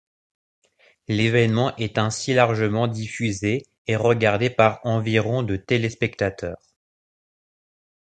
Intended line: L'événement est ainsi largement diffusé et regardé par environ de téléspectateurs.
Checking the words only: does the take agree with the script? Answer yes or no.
yes